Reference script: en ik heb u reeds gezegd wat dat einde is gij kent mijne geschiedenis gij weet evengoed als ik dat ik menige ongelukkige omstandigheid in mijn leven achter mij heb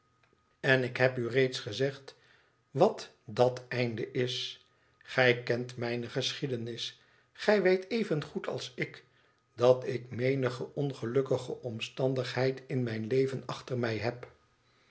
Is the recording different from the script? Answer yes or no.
no